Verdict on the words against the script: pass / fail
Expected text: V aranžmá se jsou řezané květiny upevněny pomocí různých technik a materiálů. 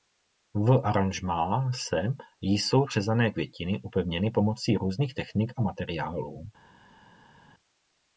pass